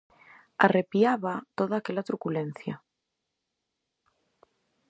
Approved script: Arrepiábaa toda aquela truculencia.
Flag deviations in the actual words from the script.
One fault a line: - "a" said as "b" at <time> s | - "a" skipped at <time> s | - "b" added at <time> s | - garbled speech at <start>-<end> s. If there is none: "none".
none